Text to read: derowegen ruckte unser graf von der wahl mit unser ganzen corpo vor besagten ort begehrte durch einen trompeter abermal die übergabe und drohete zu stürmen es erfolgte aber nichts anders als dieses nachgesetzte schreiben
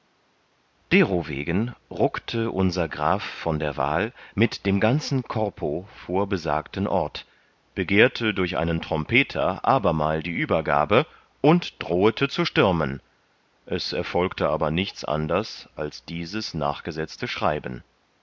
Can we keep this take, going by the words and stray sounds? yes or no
no